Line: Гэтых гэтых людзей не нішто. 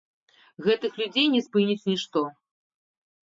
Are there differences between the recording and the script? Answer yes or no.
yes